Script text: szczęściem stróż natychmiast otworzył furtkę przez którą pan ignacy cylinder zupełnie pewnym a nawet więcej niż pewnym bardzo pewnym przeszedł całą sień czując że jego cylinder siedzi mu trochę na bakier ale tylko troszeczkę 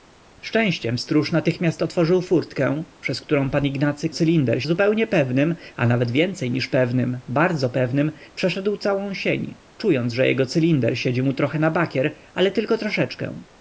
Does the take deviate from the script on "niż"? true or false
false